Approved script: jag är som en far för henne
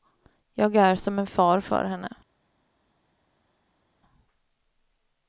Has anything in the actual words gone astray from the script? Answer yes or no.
no